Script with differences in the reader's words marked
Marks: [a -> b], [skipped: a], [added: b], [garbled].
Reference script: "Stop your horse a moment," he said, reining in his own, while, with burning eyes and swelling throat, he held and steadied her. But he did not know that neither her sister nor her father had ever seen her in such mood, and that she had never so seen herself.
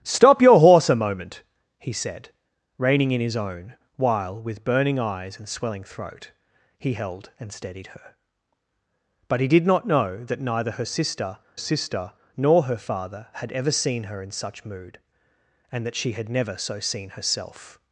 "Stop your horse a moment," he said, reining in his own, while, with burning eyes and swelling throat, he held and steadied her. But he did not know that neither her sister [added: sister] nor her father had ever seen her in such mood, and that she had never so seen herself.